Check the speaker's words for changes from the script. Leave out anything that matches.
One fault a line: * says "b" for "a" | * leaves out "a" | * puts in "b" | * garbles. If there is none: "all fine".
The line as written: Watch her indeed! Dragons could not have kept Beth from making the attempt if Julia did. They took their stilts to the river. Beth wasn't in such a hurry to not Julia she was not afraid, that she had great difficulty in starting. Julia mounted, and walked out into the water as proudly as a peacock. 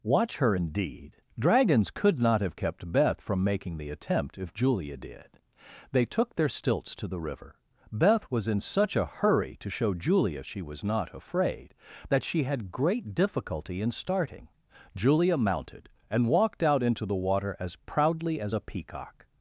* says "was" for "wasn't"
* says "show" for "not"